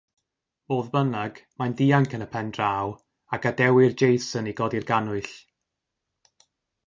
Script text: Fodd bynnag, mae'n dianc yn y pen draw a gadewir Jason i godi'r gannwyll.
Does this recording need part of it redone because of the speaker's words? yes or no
no